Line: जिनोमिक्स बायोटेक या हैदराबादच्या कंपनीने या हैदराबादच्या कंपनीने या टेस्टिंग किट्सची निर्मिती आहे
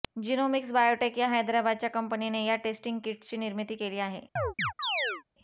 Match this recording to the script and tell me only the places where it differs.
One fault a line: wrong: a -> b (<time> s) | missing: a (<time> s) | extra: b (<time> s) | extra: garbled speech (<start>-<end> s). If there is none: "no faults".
missing: हैदराबादच्या कंपनीने या (2.5 s)
extra: केली (3.8 s)